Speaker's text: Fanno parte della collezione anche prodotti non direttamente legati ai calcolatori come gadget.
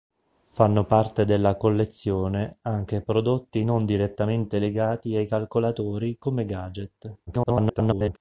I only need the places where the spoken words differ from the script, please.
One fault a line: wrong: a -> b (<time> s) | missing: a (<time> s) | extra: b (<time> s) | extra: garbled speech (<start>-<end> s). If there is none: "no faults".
extra: garbled speech (7.3-8.2 s)